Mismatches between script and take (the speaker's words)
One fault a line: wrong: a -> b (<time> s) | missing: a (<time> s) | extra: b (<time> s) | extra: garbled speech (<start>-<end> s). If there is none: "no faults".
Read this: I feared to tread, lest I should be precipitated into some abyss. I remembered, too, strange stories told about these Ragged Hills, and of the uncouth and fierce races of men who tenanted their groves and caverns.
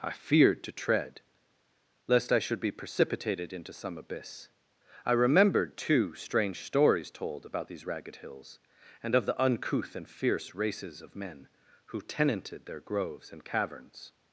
no faults